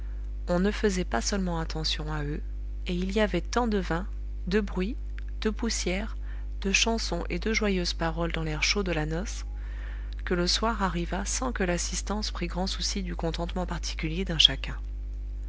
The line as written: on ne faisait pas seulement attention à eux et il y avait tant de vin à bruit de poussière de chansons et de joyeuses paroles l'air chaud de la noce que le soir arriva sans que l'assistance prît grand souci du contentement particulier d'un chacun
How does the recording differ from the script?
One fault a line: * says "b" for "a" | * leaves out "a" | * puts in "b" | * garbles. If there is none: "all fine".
* says "de" for "à"
* puts in "dans"